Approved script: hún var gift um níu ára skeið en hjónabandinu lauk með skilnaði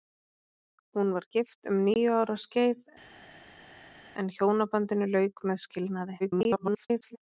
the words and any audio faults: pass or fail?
fail